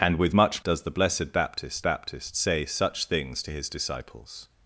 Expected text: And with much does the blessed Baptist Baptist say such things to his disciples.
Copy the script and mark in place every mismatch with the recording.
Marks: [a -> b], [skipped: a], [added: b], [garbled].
And with much does the blessed Baptist Baptist say such things to his disciples.